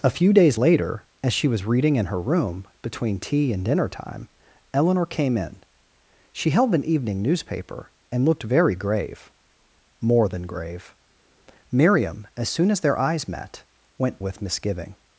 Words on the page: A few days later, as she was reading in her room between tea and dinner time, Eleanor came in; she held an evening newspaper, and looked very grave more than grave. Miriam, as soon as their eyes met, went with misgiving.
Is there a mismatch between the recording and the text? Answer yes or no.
no